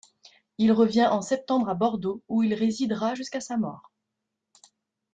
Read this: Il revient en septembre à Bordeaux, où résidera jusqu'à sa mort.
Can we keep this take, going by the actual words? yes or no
no